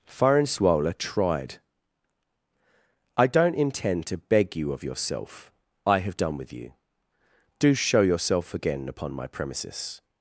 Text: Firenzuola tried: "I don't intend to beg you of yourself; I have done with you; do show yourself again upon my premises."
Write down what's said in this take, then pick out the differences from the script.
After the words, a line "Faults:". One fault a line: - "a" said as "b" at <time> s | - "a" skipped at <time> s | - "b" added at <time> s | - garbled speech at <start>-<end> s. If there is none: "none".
Firenzuola tried: "I don't intend to beg you of yourself; I have done with you; do show yourself again upon my premises."
Faults:
none